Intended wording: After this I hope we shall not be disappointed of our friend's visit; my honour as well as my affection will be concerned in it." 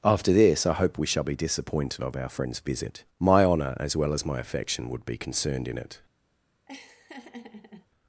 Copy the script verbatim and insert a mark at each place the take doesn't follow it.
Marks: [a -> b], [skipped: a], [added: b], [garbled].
After this I hope we shall [skipped: not] be disappointed of our friend's visit; my honour as well as my affection [will -> would] be concerned in it."